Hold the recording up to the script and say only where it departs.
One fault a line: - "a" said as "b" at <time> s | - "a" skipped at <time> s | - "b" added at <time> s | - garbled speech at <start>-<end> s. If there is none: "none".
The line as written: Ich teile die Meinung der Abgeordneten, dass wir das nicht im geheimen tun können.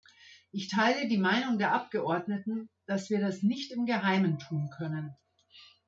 none